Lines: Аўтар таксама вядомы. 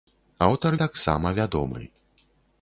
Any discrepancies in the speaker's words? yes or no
no